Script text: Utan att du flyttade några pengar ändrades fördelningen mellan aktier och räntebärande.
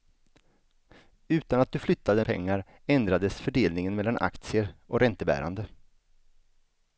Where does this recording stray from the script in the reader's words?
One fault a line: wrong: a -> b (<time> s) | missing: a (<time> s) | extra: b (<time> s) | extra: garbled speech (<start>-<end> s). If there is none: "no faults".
missing: några (2.2 s)